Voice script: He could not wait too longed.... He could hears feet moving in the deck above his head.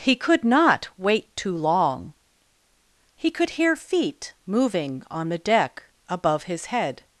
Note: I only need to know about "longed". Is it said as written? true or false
false